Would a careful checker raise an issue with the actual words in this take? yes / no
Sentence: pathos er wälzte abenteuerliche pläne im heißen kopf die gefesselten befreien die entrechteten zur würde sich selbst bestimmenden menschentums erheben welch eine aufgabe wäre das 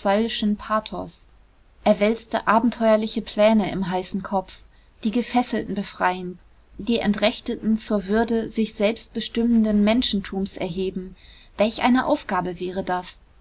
no